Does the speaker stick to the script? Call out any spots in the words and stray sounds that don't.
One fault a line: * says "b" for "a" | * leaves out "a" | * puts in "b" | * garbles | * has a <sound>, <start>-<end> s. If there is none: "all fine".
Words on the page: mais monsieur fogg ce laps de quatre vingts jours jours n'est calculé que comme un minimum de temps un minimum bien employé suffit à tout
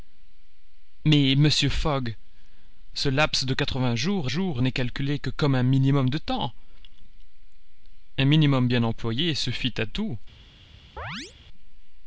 * has a chirp, 11.0-11.3 s